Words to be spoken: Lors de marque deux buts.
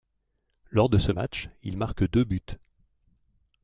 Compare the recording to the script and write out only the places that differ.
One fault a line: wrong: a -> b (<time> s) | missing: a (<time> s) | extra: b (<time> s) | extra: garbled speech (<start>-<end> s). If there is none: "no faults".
extra: ce match il (1.0 s)